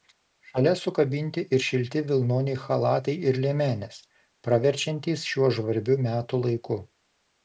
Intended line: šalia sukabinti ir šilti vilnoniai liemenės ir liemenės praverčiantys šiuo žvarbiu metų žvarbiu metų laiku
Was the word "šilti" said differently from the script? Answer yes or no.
no